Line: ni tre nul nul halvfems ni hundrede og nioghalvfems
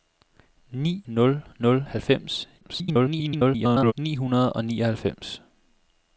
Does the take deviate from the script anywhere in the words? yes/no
yes